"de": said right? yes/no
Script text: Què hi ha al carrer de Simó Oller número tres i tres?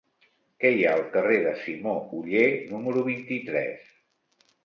yes